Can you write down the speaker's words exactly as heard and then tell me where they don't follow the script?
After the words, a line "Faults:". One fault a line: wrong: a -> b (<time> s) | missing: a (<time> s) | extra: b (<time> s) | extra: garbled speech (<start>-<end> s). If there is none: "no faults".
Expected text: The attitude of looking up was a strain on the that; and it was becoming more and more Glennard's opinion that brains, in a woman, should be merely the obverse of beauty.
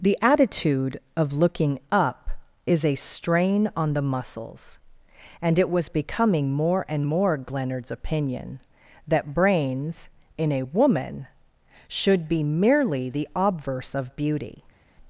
The attitude of looking up is a strain on the muscles; and it was becoming more and more Glennard's opinion that brains, in a woman, should be merely the obverse of beauty.
Faults:
wrong: was -> is (2.6 s)
wrong: that -> muscles (4.0 s)